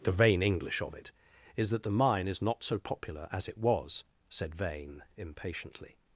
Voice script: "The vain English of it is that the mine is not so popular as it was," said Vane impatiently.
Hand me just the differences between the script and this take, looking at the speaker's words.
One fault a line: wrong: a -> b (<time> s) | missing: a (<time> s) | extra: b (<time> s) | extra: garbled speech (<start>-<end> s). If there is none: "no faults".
no faults